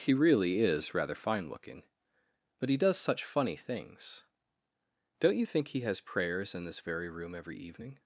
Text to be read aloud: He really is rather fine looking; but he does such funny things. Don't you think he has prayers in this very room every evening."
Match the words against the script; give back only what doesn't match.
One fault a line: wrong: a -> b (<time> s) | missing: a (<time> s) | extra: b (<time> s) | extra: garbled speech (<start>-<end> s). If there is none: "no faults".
no faults